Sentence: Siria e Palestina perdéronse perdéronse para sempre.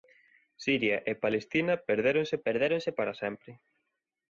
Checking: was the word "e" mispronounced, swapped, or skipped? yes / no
no